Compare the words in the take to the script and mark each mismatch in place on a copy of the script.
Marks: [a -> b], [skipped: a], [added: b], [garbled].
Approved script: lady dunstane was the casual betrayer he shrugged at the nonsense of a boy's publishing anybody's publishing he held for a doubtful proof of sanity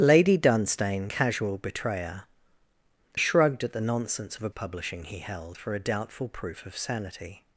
lady dunstane [skipped: was the] casual betrayer [skipped: he] shrugged at the nonsense of a [skipped: boy's publishing anybody's] publishing he held for a doubtful proof of sanity